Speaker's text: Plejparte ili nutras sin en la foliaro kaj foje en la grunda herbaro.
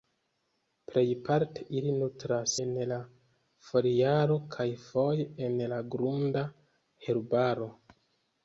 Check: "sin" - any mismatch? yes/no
yes